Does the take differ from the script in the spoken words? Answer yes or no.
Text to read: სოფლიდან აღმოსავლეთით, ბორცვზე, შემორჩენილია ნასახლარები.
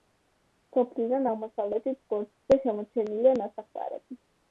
no